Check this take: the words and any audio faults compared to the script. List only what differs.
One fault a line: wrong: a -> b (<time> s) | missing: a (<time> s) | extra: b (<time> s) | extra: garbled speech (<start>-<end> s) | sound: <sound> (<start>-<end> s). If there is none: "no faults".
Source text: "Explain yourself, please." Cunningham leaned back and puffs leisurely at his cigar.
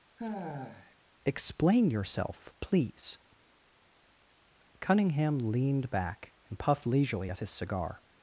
sound: sigh (0.2-1.0 s)
wrong: puffs -> puffed (6.6 s)